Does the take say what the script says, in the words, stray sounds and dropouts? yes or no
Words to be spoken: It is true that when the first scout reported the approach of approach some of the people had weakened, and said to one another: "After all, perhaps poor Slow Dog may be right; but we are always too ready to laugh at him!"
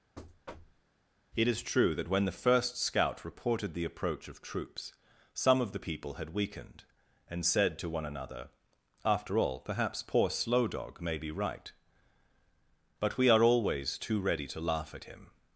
no